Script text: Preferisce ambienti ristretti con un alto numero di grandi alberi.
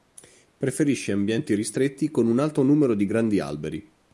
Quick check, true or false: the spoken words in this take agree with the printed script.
true